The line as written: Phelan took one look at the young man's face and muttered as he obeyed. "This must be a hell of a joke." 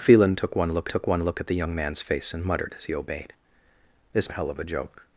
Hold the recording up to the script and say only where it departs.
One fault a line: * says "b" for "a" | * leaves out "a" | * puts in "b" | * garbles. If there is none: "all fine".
* puts in "took one look"
* leaves out "must be"